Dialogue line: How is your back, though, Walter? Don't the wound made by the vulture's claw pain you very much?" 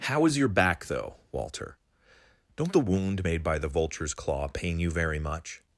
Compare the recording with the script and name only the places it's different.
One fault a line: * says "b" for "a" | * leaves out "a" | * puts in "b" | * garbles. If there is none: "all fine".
all fine